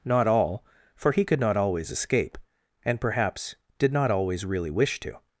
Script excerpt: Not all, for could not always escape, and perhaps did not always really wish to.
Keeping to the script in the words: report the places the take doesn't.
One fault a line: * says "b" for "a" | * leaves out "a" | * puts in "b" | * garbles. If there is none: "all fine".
* puts in "he"